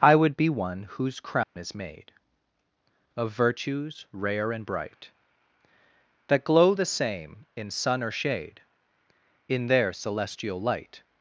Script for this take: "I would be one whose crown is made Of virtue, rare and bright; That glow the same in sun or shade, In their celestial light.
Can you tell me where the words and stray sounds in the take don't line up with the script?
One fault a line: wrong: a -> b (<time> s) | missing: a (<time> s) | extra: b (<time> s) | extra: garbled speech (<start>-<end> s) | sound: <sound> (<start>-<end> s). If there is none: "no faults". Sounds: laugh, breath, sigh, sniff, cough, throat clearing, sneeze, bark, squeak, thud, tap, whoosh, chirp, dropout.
sound: dropout (1.4-1.6 s)
wrong: virtue -> virtues (3.3 s)